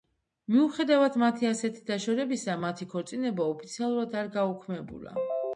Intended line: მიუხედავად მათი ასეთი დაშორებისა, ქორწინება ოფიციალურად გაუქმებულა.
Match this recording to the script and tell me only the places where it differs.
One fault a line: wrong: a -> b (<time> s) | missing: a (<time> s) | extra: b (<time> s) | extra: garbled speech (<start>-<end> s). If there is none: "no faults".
extra: მათი (2.7 s)
extra: არ (4.2 s)